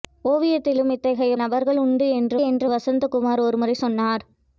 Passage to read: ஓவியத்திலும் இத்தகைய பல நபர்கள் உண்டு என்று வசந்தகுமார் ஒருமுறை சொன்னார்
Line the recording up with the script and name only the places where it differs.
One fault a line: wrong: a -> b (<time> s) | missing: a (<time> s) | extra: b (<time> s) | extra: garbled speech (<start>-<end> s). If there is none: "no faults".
missing: பல (1.3 s)
extra: என்று (2.4 s)